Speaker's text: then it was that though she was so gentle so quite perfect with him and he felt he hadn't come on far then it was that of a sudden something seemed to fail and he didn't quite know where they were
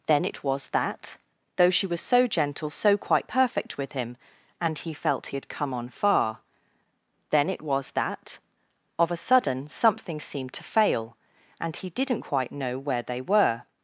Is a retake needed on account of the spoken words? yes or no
yes